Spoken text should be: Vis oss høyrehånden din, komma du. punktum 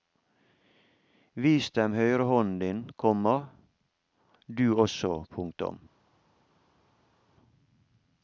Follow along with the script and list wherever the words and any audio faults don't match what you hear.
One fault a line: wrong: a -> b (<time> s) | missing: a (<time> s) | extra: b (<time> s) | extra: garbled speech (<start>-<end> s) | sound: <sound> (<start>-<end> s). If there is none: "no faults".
wrong: oss -> dem (1.7 s)
extra: også (4.8 s)